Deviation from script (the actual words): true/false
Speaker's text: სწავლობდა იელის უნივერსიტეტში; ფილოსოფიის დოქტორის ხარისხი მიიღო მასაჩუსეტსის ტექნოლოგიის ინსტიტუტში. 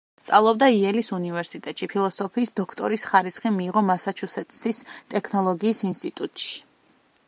false